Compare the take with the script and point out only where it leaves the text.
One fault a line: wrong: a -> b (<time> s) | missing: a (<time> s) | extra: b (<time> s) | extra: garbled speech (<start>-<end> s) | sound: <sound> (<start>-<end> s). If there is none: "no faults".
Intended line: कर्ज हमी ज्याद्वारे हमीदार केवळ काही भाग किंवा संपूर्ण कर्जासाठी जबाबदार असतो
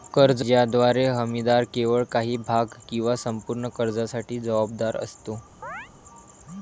missing: हमी (0.4 s)
sound: chirp (5.6-5.9 s)